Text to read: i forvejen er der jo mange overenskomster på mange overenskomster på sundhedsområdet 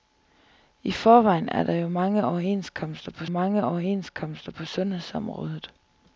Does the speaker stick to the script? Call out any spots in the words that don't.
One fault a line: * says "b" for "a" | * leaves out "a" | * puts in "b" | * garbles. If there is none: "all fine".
all fine